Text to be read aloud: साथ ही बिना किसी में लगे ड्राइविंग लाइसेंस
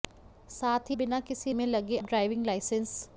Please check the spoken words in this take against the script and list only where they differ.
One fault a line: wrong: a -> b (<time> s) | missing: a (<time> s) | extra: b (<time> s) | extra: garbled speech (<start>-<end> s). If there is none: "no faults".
no faults